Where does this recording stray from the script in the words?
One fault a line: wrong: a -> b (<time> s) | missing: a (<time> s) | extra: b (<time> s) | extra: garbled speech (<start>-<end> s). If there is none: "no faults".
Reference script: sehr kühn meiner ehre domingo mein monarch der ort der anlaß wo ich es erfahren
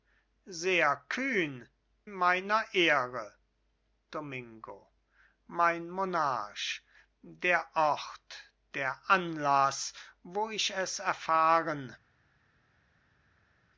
no faults